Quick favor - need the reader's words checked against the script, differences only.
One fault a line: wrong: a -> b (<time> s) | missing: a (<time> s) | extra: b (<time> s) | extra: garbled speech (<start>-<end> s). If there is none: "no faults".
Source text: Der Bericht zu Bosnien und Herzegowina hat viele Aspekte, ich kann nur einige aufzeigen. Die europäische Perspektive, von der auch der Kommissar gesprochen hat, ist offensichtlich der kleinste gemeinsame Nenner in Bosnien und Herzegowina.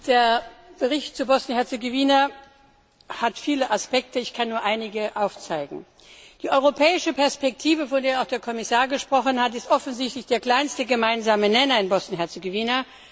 no faults